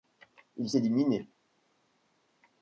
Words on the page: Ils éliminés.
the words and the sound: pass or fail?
pass